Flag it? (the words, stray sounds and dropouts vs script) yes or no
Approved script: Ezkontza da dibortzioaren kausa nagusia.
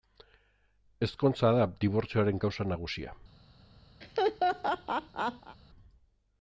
yes